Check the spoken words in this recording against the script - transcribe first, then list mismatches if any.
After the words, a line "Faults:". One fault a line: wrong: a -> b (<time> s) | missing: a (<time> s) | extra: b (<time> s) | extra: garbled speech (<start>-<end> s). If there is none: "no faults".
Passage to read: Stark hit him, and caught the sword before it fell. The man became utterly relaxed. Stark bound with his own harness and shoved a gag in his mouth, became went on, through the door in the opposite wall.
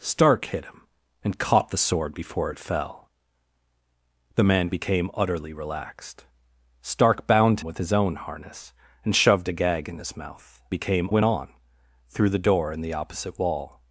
Stark hit him, and caught the sword before it fell. The man became utterly relaxed. Stark bound with his own harness and shoved a gag in his mouth, became went on, through the door in the opposite wall.
Faults:
no faults